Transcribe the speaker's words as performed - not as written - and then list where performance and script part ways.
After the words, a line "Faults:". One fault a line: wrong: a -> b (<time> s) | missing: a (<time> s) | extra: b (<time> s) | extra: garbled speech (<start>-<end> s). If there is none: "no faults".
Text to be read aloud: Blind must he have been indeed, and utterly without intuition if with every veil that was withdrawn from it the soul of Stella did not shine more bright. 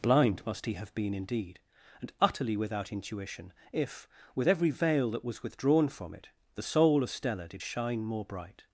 Blind must he have been indeed, and utterly without intuition if with every veil that was withdrawn from it the soul of Stella did shine more bright.
Faults:
missing: not (7.6 s)